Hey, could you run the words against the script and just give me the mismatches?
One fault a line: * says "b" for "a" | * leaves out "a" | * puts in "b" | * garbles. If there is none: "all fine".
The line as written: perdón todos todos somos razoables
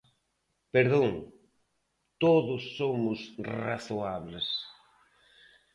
* leaves out "todos"